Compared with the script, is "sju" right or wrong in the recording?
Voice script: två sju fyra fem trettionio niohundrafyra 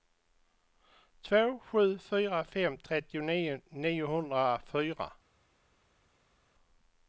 right